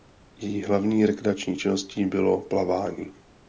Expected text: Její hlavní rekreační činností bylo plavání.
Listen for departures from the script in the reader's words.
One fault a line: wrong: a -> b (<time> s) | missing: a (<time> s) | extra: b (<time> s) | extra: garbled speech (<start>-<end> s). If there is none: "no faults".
no faults